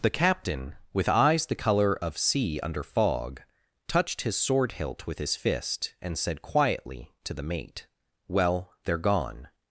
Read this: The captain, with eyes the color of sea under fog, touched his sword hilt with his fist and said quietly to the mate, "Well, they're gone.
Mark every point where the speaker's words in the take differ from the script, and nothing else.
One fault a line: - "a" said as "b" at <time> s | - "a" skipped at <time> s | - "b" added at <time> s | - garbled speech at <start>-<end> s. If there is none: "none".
none